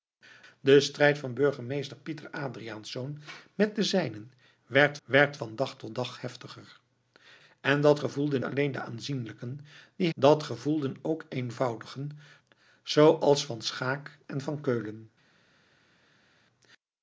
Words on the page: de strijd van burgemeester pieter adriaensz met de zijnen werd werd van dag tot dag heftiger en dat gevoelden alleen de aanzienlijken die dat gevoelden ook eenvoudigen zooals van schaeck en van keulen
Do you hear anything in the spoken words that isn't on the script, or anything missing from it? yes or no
no